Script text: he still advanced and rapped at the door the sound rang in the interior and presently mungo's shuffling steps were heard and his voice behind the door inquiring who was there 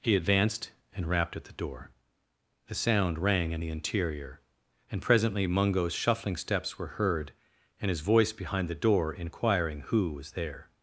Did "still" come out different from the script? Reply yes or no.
yes